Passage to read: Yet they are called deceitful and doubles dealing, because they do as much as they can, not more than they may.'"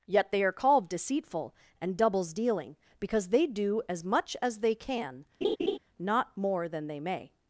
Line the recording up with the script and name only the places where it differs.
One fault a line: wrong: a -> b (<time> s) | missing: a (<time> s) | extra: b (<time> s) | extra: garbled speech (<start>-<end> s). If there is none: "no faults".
no faults